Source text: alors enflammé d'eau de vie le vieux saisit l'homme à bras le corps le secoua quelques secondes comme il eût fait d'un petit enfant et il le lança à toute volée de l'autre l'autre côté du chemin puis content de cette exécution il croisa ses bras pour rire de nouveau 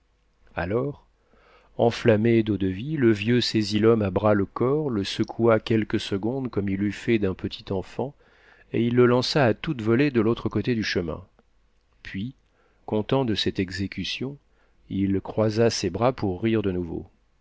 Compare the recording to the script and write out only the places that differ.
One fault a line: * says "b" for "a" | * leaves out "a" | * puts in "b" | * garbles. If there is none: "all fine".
* leaves out "l'autre"